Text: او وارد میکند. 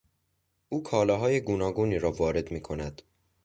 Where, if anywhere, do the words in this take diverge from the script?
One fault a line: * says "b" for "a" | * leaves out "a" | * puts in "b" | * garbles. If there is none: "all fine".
* puts in "کالاهای گوناگونی را"